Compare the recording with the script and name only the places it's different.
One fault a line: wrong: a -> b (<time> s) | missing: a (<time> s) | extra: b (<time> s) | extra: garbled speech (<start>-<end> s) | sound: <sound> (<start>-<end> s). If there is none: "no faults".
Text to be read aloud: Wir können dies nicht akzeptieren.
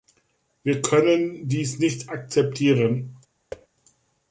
sound: thud (3.5-3.7 s)